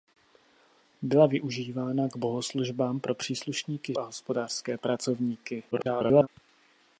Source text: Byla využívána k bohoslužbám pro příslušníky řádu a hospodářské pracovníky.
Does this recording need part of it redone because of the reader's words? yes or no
yes